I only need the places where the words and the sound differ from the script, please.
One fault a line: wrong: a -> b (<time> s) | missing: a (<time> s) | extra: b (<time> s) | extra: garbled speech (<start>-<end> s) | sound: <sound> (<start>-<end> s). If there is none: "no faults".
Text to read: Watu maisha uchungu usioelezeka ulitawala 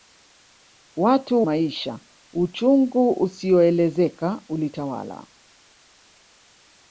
no faults